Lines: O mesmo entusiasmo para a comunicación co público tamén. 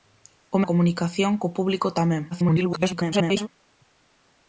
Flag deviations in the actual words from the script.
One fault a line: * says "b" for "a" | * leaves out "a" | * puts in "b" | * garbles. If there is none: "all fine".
* leaves out "mesmo entusiasmo para"
* garbles